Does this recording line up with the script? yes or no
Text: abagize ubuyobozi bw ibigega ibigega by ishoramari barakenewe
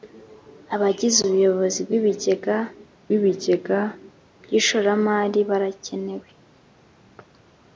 yes